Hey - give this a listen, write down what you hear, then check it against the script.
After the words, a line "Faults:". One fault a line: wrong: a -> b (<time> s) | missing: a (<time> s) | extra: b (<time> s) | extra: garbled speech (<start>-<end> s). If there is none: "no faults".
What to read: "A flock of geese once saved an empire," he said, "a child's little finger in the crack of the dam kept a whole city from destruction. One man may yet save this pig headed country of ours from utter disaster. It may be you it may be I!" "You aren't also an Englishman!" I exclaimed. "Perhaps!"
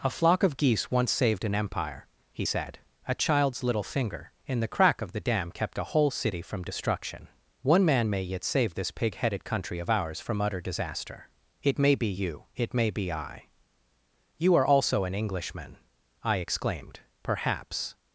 "A flock of geese once saved an empire," he said, "a child's little finger in the crack of the dam kept a whole city from destruction. One man may yet save this pig headed country of ours from utter disaster. It may be you it may be I!" "You are also an Englishman!" I exclaimed. "Perhaps!"
Faults:
wrong: aren't -> are (14.5 s)